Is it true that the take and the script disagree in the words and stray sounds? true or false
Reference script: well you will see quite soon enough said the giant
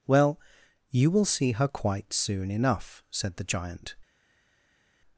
true